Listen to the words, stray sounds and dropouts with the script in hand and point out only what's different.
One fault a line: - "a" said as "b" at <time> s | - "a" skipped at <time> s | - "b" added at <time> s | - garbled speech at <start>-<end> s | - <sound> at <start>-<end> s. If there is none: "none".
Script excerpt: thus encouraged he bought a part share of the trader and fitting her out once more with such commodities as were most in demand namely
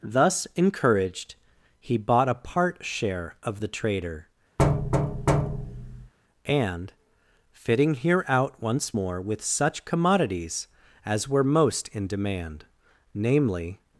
- thud at 4.6-6.1 s
- "her" said as "here" at 7.9 s